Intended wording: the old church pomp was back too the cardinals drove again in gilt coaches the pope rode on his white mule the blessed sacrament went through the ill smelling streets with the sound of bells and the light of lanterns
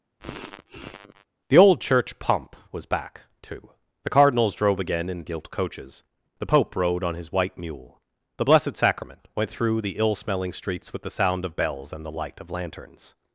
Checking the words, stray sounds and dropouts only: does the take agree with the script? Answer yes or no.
no